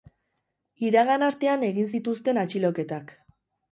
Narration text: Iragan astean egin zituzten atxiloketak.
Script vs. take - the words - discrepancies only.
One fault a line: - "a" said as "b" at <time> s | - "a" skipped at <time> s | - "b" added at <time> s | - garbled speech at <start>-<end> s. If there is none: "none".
none